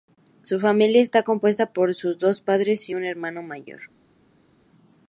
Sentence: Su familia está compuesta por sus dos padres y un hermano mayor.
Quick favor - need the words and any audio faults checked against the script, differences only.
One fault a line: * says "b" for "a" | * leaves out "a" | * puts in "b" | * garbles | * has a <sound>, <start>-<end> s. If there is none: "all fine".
all fine